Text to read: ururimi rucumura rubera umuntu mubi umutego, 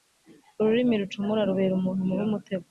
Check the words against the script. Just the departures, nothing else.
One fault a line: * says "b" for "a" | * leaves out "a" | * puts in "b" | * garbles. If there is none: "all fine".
all fine